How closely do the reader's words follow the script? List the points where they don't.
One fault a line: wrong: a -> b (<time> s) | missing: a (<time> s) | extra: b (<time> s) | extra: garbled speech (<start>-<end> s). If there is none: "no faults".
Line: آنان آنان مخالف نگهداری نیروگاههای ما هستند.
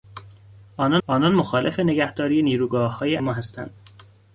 no faults